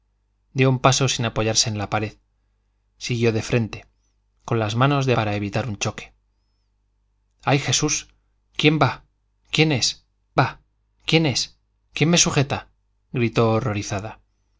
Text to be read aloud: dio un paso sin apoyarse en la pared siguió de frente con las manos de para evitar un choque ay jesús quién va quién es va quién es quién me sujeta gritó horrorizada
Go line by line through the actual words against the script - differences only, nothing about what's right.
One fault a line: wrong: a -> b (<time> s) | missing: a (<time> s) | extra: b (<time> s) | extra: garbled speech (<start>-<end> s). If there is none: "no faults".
no faults